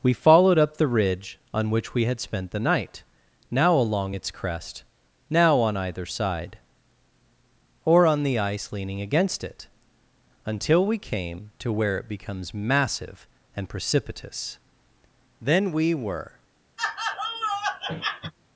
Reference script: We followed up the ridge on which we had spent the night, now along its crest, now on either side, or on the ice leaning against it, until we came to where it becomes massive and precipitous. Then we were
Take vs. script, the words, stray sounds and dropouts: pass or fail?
fail